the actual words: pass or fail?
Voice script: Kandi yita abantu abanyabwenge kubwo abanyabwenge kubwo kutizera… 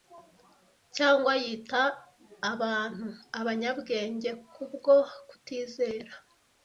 fail